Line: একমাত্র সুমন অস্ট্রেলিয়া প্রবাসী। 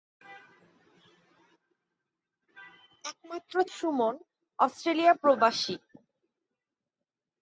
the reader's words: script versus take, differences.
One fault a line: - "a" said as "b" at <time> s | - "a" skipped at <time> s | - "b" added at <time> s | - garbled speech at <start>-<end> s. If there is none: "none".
none